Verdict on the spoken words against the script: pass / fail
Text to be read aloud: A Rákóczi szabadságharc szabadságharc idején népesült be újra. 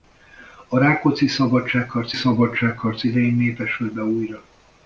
pass